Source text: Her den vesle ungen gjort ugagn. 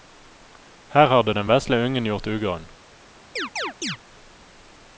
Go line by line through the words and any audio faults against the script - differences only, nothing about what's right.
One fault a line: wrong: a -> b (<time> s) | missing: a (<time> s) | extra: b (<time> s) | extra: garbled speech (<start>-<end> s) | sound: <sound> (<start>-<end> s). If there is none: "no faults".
extra: hadde (1.1 s)
sound: chirp (3.4-4.0 s)